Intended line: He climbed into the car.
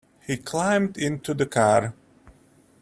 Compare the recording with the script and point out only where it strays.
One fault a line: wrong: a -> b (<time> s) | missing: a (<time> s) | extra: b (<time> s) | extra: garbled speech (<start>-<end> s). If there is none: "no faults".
no faults